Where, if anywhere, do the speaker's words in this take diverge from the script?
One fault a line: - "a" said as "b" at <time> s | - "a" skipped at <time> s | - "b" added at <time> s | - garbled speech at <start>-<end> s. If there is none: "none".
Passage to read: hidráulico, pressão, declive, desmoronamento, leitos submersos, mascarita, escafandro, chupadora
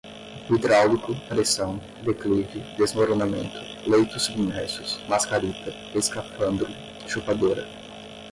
none